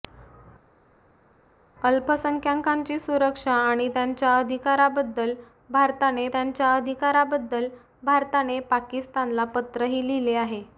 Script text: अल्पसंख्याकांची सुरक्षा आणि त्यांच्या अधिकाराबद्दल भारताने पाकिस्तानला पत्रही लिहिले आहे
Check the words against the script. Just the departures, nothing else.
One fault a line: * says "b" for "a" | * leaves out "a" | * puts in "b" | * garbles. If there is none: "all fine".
* puts in "त्यांच्या अधिकाराबद्दल भारताने"